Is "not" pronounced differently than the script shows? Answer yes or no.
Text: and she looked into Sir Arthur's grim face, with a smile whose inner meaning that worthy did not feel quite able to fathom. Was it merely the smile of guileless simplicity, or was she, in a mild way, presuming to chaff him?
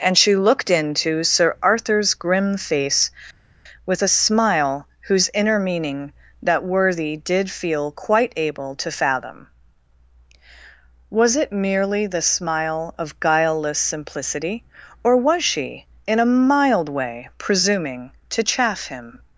yes